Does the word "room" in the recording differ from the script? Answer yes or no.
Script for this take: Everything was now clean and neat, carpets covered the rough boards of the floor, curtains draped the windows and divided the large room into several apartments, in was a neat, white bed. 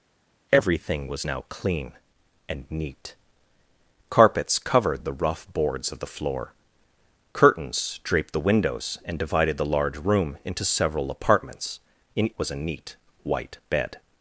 no